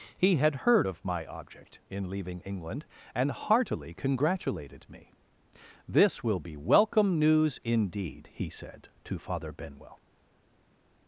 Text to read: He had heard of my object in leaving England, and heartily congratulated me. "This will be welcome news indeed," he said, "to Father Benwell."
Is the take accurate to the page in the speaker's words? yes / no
yes